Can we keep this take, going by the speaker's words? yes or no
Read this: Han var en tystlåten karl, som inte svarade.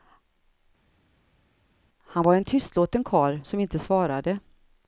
yes